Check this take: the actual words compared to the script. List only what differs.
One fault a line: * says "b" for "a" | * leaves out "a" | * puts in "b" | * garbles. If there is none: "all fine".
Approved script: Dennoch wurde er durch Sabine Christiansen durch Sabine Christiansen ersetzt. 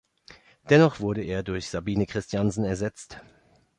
* leaves out "durch Sabine Christiansen"